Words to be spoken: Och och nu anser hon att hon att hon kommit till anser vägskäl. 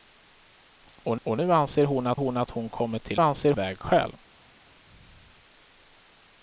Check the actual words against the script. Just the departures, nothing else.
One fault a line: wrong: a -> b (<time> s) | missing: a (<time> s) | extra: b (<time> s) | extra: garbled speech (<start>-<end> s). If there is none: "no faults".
no faults